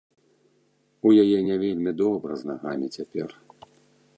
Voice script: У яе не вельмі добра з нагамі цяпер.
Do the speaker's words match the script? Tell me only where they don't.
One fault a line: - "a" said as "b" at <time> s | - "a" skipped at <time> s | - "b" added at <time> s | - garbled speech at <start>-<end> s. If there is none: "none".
none